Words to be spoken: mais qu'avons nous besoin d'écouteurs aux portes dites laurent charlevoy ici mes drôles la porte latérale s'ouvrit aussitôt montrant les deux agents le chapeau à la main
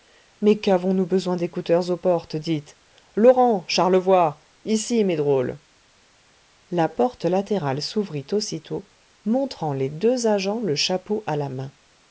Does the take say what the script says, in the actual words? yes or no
yes